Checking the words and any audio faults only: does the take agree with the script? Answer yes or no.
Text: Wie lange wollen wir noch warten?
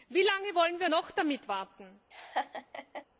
no